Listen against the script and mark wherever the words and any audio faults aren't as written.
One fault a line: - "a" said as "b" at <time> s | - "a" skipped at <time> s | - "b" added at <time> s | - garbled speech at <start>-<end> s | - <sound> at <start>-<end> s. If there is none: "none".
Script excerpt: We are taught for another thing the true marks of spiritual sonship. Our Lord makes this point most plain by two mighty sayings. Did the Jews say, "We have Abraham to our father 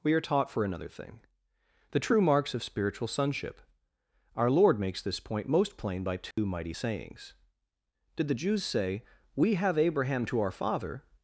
- dropout at 6.3-6.4 s